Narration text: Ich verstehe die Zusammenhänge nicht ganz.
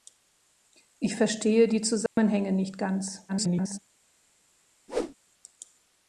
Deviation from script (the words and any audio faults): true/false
true